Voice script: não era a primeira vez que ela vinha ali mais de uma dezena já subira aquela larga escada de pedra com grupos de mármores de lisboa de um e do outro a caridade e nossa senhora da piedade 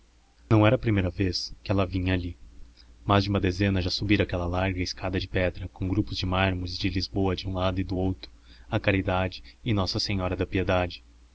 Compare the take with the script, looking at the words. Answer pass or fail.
fail